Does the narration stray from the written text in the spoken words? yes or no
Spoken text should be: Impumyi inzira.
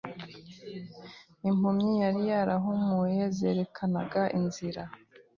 yes